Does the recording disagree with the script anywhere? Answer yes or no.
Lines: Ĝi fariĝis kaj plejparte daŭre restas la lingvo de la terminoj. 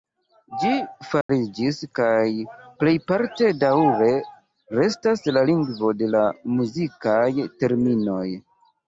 yes